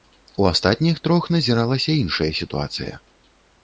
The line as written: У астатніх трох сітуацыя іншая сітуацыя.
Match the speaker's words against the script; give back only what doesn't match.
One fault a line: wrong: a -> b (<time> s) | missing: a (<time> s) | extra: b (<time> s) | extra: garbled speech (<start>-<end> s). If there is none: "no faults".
wrong: сітуацыя -> назіралася (1.4 s)